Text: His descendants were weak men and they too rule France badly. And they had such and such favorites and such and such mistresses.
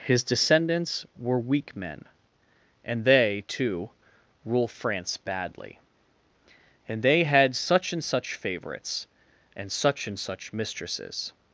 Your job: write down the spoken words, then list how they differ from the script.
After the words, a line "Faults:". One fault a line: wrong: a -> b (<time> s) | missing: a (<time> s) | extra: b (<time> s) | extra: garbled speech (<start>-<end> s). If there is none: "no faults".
His descendants were weak men and they too rule France badly. And they had such and such favorites and such and such mistresses.
Faults:
no faults